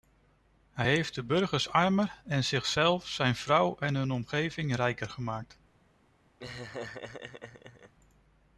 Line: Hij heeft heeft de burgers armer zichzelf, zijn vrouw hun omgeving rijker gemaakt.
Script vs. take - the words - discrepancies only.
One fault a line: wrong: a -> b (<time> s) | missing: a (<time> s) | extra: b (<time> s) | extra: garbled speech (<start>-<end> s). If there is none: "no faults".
missing: heeft (1.1 s)
extra: en (2.2 s)
extra: en (3.8 s)